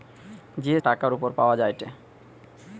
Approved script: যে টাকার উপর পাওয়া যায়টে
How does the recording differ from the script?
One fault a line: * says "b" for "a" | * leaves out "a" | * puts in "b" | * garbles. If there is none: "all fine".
all fine